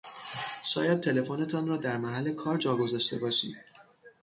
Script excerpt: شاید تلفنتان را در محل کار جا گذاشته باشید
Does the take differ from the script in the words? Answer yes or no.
no